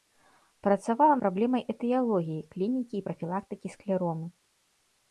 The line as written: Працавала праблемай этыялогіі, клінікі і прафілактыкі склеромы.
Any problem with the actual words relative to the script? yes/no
no